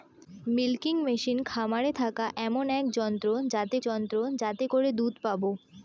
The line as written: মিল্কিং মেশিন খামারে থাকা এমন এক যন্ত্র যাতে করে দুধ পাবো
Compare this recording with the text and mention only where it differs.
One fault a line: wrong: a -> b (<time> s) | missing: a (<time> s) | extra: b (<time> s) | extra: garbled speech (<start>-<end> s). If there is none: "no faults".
extra: যন্ত্র যাতে (3.8 s)